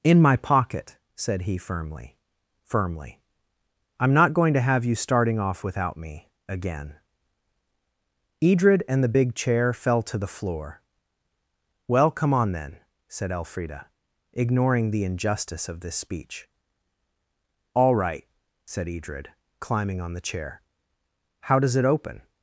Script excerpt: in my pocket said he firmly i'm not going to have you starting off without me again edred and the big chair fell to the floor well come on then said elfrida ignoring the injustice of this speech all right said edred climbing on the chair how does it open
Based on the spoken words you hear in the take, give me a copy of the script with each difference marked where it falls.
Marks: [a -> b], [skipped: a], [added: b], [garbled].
in my pocket said he firmly [added: firmly] i'm not going to have you starting off without me again edred and the big chair fell to the floor well come on then said elfrida ignoring the injustice of this speech all right said edred climbing on the chair how does it open